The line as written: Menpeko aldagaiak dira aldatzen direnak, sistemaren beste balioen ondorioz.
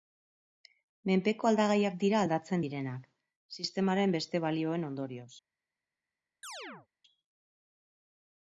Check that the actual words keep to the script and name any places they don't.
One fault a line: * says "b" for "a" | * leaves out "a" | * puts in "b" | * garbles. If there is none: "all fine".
all fine